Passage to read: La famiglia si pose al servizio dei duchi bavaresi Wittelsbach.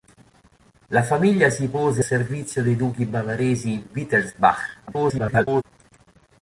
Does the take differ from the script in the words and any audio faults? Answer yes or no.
yes